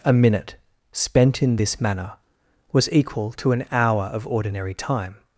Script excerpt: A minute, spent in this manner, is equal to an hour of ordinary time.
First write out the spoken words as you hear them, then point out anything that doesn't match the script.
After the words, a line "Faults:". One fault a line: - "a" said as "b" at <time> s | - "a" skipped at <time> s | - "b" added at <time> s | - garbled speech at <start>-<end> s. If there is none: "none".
A minute, spent in this manner, was equal to an hour of ordinary time.
Faults:
- "is" said as "was" at 2.7 s